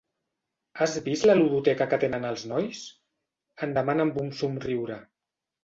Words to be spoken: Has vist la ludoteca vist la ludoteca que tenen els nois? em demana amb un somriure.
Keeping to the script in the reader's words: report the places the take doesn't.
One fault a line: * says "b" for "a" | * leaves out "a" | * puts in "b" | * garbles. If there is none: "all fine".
* leaves out "vist la ludoteca"